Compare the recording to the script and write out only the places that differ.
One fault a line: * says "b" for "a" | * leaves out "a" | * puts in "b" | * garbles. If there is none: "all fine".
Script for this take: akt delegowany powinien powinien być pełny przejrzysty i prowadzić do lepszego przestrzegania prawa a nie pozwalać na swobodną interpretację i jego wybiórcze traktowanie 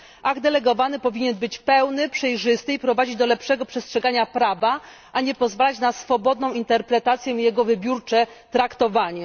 * leaves out "powinien"